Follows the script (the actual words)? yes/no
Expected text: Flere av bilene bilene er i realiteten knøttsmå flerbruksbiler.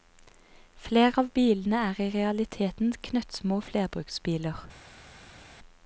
no